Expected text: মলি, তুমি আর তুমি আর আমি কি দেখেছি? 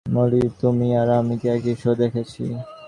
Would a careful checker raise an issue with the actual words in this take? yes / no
yes